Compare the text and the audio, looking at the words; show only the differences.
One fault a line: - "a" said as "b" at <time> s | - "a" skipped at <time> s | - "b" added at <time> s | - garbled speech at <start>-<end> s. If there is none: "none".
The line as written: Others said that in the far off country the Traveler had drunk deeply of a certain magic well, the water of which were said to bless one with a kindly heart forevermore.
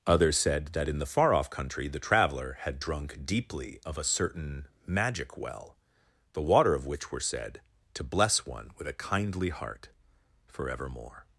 none